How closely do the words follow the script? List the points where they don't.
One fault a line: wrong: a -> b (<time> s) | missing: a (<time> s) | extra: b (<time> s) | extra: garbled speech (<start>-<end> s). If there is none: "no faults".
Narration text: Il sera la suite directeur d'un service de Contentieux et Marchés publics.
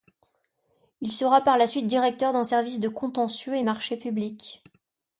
extra: par (1.4 s)